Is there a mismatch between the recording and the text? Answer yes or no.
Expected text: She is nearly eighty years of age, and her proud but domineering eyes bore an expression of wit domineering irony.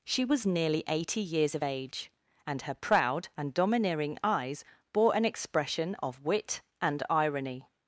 yes